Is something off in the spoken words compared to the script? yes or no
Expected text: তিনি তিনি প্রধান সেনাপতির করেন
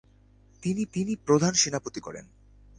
no